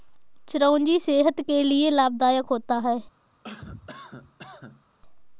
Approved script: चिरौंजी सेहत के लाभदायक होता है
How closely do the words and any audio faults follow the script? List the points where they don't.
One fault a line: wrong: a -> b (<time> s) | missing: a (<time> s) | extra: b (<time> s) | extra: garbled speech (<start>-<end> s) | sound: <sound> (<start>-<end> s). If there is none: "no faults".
extra: लिए (1.6 s)
sound: cough (3.4-4.8 s)